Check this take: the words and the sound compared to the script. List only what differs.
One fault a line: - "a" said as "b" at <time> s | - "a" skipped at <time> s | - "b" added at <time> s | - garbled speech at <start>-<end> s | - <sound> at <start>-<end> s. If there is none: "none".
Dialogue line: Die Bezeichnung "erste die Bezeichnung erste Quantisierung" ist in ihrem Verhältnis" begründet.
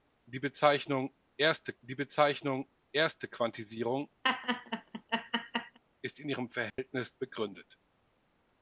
- laugh at 4.2-5.8 s
- dropout at 6.7-6.8 s